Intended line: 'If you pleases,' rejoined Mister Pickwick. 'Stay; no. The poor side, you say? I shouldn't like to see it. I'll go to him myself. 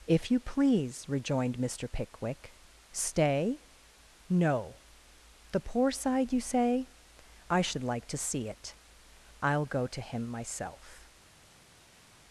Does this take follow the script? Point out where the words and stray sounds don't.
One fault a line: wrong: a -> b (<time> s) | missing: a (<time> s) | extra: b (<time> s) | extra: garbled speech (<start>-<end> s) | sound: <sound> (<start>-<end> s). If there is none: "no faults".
wrong: pleases -> please (0.4 s)
wrong: shouldn't -> should (7.6 s)